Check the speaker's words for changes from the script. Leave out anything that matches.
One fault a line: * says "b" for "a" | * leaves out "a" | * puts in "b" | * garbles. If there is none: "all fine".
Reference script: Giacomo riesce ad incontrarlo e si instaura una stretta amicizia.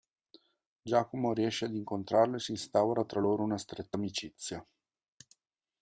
* puts in "tra loro"